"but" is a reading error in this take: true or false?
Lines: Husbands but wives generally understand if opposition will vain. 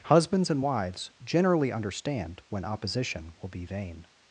true